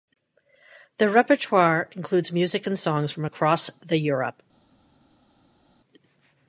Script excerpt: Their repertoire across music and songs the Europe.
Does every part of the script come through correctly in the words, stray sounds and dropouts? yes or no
no